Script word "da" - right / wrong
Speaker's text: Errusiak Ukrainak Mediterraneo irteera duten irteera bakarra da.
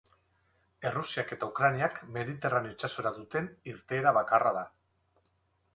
right